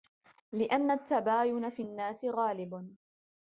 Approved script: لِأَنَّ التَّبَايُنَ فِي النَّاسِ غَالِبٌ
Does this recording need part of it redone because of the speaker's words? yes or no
no